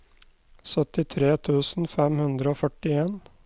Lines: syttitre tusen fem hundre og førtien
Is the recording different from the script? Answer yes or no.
no